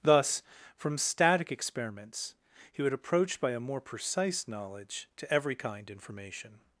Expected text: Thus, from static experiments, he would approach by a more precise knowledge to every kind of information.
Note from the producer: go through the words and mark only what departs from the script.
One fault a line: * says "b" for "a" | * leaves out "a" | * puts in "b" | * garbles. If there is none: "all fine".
* leaves out "of"